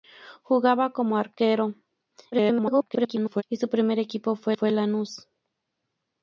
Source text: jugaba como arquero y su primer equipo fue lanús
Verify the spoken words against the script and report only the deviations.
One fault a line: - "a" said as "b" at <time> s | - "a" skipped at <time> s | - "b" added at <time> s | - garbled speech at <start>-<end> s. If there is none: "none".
- garbled speech at 2.3-3.4 s
- "fue" added at 4.5 s